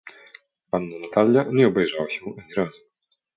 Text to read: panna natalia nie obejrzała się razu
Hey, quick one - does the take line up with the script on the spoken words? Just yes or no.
no